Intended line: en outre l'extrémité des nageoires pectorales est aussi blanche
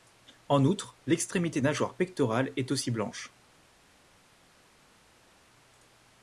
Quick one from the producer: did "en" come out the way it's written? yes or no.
yes